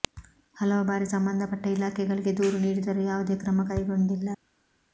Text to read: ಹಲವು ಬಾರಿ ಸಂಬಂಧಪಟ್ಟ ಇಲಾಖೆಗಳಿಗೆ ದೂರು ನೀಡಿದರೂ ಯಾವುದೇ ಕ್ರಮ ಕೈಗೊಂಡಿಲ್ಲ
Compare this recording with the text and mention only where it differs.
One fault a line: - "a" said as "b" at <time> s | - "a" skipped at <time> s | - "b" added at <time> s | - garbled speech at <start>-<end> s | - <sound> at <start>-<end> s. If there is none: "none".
none